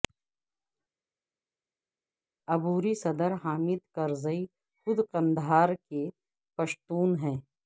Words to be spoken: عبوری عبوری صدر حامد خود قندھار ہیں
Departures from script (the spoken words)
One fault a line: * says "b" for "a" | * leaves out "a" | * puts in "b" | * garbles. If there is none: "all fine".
* leaves out "عبوری"
* puts in "کرزئی"
* puts in "کے پشتون"